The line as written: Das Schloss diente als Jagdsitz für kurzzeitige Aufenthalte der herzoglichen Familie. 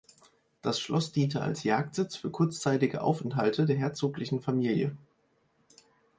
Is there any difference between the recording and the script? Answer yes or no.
no